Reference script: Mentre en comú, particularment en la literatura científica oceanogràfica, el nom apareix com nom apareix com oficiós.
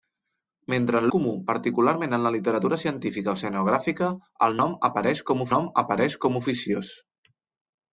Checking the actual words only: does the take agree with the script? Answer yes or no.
yes